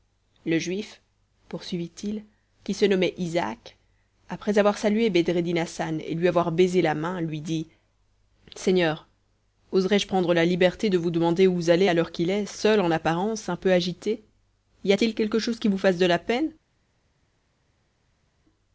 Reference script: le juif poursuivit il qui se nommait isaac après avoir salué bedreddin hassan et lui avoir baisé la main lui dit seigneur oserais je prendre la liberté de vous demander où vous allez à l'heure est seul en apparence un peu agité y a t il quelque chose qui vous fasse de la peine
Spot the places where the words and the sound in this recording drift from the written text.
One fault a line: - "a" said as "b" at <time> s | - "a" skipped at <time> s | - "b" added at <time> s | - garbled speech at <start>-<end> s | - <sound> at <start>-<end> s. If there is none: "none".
- "qu'il" added at 12.1 s